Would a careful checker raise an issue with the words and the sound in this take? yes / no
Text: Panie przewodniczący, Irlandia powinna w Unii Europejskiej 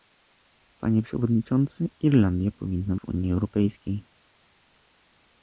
no